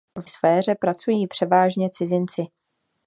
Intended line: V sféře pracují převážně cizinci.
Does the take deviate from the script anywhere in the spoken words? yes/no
no